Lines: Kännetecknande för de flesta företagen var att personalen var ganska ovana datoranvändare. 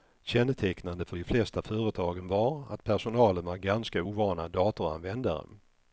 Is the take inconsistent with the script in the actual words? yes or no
no